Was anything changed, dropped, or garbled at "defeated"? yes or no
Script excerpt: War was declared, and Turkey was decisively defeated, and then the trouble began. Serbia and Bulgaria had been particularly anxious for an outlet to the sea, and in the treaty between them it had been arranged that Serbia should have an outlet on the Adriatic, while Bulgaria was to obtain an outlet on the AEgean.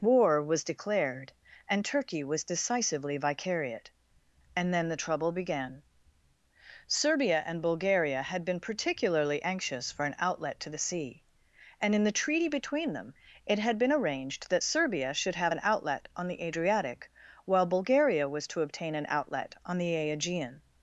yes